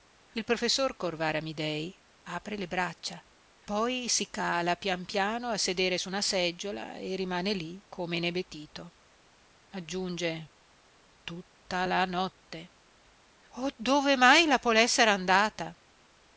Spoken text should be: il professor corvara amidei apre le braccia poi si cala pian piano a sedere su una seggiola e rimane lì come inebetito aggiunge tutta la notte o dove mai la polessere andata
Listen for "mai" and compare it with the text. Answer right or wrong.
right